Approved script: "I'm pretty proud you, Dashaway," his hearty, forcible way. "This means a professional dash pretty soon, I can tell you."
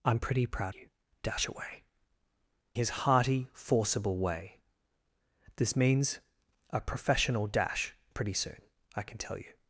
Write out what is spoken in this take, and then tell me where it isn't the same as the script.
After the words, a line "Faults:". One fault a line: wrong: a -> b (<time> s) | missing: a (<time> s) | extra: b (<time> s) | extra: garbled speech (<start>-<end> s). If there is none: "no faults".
"I'm pretty proud you, Dashaway," his hearty, forcible way. "This means a professional dash pretty soon, I can tell you."
Faults:
no faults